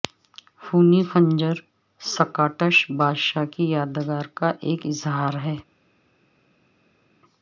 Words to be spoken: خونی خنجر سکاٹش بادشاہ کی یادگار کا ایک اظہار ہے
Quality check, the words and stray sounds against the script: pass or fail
pass